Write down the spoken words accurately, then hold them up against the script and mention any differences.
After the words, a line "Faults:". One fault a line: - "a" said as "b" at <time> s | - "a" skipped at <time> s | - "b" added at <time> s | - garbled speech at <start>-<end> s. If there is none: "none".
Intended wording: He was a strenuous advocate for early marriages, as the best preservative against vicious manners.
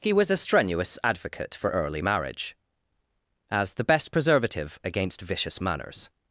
He was a strenuous advocate for early marriage, as the best preservative against vicious manners.
Faults:
- "marriages" said as "marriage" at 2.0 s